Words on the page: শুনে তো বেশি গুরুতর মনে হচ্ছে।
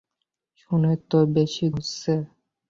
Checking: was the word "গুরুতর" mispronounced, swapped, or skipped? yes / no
yes